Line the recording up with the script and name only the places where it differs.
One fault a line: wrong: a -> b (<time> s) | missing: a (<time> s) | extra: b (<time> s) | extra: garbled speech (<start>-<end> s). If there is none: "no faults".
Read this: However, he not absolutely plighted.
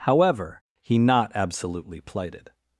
no faults